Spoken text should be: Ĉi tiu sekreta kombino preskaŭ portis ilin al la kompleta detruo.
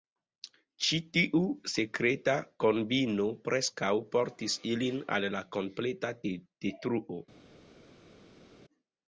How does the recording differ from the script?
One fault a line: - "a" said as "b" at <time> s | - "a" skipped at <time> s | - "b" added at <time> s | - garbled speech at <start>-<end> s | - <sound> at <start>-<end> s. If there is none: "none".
none